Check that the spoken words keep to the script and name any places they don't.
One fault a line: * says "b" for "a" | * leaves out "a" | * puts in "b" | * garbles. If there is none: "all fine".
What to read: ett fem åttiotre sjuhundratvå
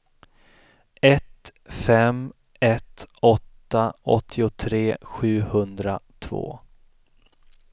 * puts in "ett åtta"